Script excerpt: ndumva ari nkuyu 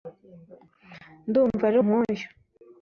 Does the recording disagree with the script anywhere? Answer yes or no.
no